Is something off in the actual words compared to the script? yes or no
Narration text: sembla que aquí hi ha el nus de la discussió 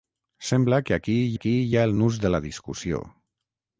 yes